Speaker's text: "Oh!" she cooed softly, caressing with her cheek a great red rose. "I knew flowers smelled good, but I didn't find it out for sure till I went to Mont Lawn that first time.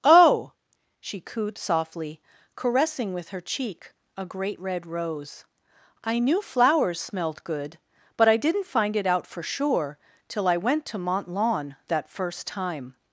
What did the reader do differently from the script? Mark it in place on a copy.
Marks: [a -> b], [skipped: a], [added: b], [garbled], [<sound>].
"Oh!" she cooed softly, caressing with her cheek a great red rose. "I knew flowers smelled good, but I didn't find it out for sure till I went to Mont Lawn that first time.